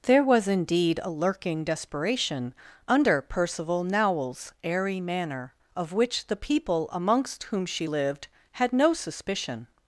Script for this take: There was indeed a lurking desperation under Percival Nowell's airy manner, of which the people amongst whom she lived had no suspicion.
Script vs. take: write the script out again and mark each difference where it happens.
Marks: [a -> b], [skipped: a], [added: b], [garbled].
There was indeed a lurking desperation under Percival Nowell's airy manner, of which the people amongst whom she lived had no suspicion.